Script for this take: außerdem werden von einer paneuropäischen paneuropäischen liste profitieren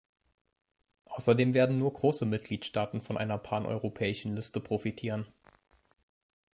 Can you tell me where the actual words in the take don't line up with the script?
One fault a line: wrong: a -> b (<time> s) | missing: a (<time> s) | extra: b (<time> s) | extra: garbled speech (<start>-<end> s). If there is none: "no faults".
extra: nur große mitgliedstaaten (1.8 s)
missing: paneuropäischen (4.3 s)